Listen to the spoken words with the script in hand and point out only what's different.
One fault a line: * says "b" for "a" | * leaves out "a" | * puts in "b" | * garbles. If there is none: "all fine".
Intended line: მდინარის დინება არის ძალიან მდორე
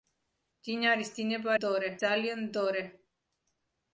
* says "მდორე" for "არის"